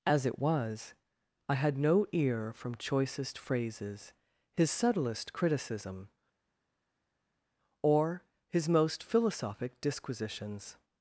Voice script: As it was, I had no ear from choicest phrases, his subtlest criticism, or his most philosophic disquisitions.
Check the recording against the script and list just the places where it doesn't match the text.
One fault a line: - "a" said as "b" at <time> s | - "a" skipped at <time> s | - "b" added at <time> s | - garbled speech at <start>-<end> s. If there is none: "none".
none